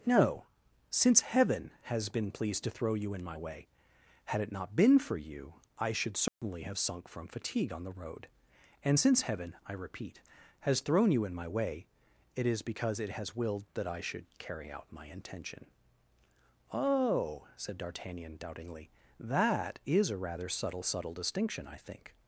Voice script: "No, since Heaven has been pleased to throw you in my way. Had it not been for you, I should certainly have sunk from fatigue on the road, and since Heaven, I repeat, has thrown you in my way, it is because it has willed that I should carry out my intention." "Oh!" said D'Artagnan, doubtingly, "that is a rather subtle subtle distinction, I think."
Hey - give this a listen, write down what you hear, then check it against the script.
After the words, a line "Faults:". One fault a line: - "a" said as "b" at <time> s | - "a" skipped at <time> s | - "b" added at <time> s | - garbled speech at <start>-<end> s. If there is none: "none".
"No, since Heaven has been pleased to throw you in my way. Had it not been for you, I should certainly have sunk from fatigue on the road, and since Heaven, I repeat, has thrown you in my way, it is because it has willed that I should carry out my intention." "Oh!" said D'Artagnan, doubtingly, "that is a rather subtle subtle distinction, I think."
Faults:
none